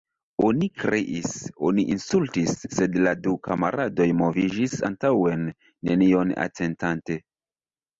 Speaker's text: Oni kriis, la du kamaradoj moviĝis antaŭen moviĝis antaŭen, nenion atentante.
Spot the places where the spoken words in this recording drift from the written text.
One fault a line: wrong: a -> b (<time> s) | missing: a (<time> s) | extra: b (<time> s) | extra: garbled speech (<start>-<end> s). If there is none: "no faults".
extra: oni insultis sed (1.7 s)
missing: moviĝis antaŭen (5.5 s)